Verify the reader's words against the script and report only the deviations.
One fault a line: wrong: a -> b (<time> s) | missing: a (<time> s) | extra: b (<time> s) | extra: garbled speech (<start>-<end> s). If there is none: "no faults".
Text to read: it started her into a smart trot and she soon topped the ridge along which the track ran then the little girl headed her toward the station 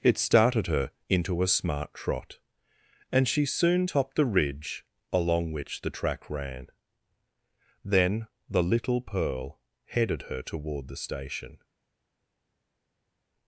wrong: girl -> pearl (9.0 s)